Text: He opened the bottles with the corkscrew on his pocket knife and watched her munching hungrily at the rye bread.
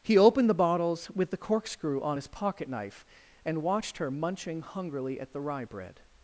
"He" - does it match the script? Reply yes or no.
yes